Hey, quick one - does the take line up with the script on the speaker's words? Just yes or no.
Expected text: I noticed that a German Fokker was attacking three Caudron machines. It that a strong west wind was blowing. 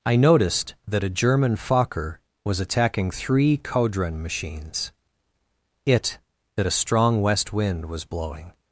yes